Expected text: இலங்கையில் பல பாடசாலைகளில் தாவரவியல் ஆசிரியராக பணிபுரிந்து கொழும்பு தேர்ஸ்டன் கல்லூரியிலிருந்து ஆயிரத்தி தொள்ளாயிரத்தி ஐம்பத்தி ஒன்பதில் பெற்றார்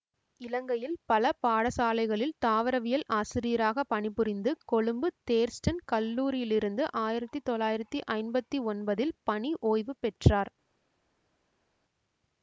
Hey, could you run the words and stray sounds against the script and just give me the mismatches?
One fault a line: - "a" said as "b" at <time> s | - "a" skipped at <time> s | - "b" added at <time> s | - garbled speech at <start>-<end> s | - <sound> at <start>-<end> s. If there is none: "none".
- "பணி ஓய்வு" added at 9.2 s